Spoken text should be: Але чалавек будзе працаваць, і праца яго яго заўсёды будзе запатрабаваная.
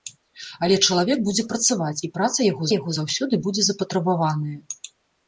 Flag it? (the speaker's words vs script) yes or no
no